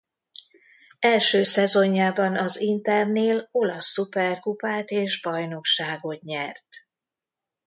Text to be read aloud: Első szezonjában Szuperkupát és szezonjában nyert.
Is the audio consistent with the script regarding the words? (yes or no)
no